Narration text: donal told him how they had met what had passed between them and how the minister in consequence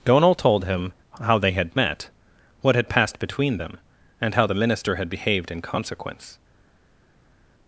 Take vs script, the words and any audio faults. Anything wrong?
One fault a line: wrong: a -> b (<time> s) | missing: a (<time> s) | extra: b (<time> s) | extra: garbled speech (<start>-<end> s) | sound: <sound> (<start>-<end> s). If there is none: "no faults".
extra: had behaved (4.9 s)